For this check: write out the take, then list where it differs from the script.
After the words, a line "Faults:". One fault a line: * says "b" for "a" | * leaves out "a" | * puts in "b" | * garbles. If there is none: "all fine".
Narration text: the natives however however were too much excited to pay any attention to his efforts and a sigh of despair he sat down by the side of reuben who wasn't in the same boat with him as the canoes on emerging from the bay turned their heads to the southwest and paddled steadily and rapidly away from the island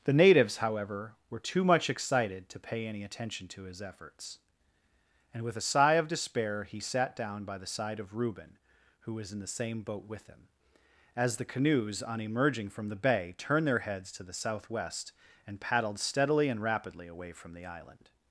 the natives however were too much excited to pay any attention to his efforts and with a sigh of despair he sat down by the side of reuben who was in the same boat with him as the canoes on emerging from the bay turned their heads to the southwest and paddled steadily and rapidly away from the island
Faults:
* leaves out "however"
* puts in "with"
* says "was" for "wasn't"